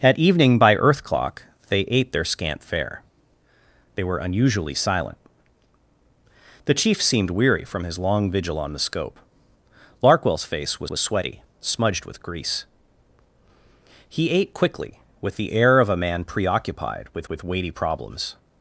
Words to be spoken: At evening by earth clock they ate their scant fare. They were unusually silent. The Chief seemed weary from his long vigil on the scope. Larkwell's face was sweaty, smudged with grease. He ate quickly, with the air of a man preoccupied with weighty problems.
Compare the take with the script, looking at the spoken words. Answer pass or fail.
fail